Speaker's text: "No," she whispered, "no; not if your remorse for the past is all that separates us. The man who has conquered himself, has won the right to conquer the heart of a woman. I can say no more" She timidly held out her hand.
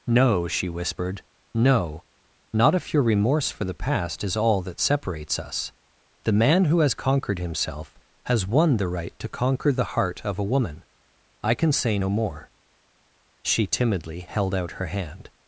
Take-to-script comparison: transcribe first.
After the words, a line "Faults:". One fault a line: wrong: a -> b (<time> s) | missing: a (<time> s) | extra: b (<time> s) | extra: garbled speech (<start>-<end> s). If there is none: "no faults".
"No," she whispered, "no; not if your remorse for the past is all that separates us. The man who has conquered himself, has won the right to conquer the heart of a woman. I can say no more" She timidly held out her hand.
Faults:
no faults